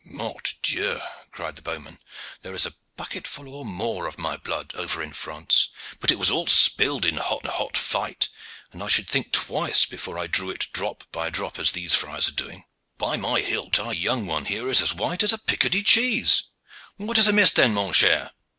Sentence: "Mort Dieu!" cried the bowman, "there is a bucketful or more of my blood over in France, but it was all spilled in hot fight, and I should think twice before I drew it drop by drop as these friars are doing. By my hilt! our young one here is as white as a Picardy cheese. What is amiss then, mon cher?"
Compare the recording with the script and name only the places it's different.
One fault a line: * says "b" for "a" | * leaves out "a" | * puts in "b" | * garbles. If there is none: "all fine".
* puts in "hot"